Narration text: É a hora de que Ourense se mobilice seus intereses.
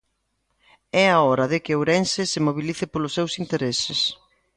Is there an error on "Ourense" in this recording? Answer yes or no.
no